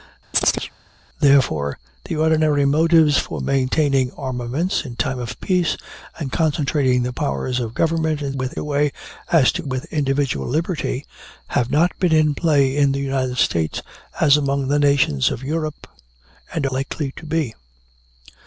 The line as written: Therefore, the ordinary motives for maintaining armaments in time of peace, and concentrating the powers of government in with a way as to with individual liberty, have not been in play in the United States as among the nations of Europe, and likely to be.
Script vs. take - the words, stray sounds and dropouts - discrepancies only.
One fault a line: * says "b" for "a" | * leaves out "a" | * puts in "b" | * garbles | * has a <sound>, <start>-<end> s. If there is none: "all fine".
* has a chirp, 0.3-0.7 s